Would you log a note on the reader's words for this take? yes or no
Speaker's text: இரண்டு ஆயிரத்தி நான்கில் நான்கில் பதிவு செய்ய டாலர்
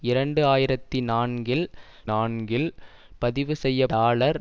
no